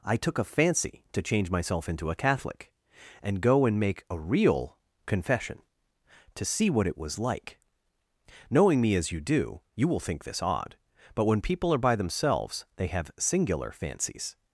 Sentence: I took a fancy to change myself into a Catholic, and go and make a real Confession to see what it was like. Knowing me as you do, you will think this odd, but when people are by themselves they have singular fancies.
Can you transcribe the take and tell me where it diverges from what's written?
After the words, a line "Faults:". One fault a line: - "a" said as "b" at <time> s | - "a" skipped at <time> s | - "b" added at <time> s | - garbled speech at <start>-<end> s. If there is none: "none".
I took a fancy to change myself into a Catholic, and go and make a real Confession to see what it was like. Knowing me as you do, you will think this odd, but when people are by themselves they have singular fancies.
Faults:
none